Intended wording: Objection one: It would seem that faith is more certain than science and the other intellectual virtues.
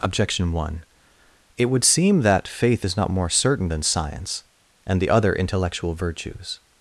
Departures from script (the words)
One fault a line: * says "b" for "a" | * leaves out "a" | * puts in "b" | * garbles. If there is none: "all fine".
* puts in "not"